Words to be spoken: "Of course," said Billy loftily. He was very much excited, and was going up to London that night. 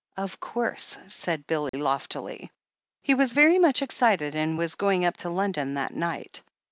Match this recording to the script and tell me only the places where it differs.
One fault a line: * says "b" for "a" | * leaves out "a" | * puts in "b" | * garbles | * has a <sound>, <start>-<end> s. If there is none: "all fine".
* has a dropout, 1.7-1.7 s